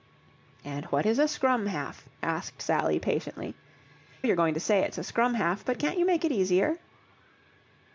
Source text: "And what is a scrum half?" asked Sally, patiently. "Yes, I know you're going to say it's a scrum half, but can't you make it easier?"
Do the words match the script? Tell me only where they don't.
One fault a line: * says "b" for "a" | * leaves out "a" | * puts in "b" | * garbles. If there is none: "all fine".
* leaves out "Yes I know"